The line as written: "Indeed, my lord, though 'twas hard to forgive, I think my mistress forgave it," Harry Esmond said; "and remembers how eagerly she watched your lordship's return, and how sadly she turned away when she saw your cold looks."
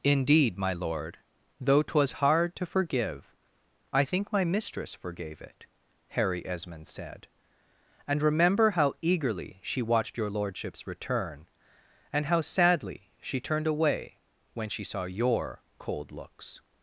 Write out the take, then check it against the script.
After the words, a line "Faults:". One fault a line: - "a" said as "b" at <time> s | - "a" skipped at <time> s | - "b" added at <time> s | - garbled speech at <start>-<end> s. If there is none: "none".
"Indeed, my lord, though 'twas hard to forgive, I think my mistress forgave it," Harry Esmond said; "and remember how eagerly she watched your lordship's return, and how sadly she turned away when she saw your cold looks."
Faults:
- "remembers" said as "remember" at 8.2 s